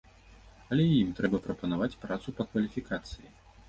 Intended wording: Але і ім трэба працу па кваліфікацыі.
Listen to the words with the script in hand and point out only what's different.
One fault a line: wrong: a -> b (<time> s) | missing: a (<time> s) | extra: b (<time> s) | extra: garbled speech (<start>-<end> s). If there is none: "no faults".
extra: прапанаваць (1.4 s)